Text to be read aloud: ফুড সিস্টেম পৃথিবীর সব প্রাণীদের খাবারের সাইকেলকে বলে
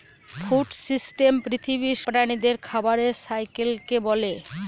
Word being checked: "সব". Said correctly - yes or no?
no